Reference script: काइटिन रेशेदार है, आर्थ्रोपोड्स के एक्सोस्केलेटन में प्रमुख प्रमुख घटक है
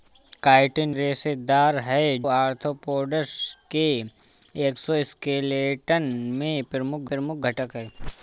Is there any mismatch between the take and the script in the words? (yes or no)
no